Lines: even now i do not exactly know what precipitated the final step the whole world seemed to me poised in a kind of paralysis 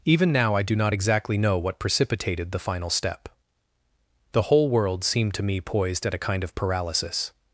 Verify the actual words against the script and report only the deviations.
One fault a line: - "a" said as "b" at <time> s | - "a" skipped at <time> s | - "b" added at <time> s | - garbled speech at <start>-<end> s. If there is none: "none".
- "in" said as "at" at 6.1 s